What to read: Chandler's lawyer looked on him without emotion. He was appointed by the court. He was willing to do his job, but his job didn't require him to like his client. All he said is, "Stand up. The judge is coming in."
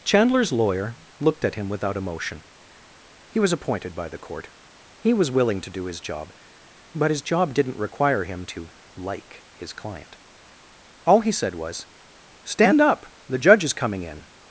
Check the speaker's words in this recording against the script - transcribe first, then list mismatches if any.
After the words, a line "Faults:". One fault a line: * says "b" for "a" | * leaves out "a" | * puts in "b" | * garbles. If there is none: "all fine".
Chandler's lawyer looked at him without emotion. He was appointed by the court. He was willing to do his job, but his job didn't require him to like his client. All he said was, "Stand up. The judge is coming in."
Faults:
* says "at" for "on"
* says "was" for "is"